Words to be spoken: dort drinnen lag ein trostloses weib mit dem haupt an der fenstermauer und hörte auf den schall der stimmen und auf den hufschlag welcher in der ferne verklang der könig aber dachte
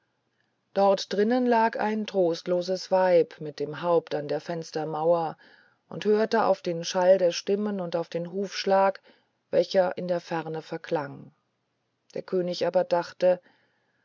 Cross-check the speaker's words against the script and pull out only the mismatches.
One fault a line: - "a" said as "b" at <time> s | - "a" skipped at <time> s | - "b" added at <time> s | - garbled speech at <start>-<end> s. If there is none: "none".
none